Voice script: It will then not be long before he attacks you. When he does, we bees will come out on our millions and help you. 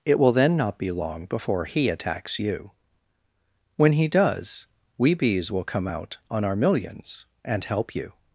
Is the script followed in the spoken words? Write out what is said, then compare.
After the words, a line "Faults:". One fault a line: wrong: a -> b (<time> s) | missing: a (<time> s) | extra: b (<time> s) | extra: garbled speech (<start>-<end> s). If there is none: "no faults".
It will then not be long before he attacks you. When he does, we bees will come out on our millions and help you.
Faults:
no faults